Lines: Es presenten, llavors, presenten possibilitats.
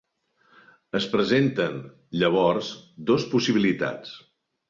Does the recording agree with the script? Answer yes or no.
no